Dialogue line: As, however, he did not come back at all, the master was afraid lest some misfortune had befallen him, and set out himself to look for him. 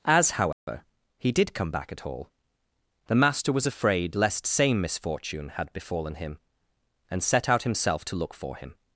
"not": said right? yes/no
no